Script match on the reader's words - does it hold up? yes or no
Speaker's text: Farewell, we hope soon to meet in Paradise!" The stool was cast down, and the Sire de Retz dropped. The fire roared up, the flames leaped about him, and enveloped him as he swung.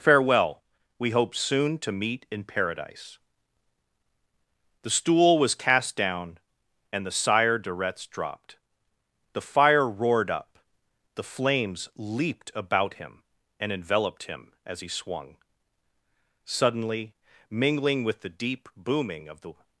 no